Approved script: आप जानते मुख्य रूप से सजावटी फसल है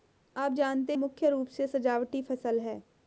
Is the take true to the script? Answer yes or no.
yes